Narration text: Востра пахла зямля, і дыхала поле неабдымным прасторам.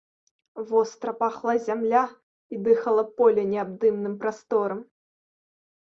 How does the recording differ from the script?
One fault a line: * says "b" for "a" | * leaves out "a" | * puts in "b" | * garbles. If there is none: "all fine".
all fine